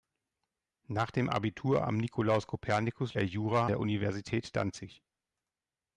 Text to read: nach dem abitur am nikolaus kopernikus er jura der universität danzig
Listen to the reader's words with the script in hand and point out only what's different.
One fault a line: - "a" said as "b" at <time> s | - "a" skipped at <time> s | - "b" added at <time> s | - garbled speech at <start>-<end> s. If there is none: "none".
none